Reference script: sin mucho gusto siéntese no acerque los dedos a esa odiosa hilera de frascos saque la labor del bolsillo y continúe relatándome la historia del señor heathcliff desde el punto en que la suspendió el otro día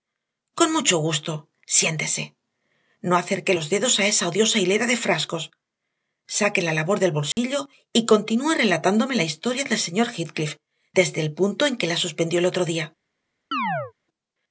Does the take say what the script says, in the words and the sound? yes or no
no